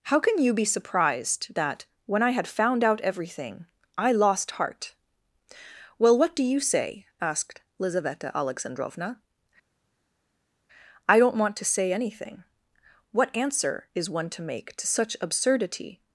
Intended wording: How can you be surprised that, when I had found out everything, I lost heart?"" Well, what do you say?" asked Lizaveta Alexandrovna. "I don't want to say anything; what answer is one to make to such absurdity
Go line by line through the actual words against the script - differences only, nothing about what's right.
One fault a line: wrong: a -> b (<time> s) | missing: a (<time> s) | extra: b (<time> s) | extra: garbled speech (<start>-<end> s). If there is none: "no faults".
no faults